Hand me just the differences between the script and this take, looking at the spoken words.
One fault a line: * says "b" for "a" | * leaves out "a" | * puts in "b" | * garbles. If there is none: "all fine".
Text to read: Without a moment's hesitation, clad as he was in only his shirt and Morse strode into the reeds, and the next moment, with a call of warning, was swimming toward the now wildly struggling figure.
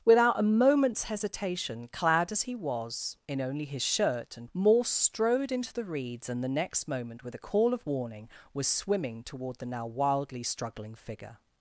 all fine